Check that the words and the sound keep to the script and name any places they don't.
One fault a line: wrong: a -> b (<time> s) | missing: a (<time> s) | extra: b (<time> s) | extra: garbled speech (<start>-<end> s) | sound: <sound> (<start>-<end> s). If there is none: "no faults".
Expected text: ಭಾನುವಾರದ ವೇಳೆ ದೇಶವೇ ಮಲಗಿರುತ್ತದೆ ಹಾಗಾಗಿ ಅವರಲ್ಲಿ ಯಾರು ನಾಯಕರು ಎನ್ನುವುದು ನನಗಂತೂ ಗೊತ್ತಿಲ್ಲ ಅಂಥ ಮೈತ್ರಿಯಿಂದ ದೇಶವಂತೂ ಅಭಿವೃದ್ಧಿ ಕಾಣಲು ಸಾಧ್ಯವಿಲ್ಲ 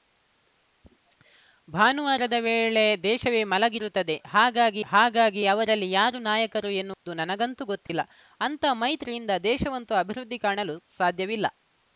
extra: ಹಾಗಾಗಿ (4.9 s)
sound: dropout (6.9-7.1 s)
sound: dropout (7.9-7.9 s)